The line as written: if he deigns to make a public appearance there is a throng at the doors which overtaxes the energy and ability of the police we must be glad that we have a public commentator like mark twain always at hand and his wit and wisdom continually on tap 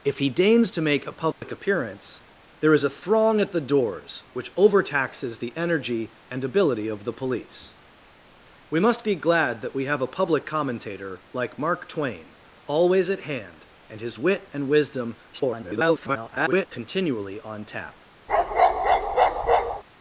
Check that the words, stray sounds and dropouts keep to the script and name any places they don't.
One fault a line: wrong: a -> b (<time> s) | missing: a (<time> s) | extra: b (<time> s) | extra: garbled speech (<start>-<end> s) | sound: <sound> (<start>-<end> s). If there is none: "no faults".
sound: dropout (1.3-1.4 s)
extra: garbled speech (15.3-16.7 s)
sound: bark (18.3-19.8 s)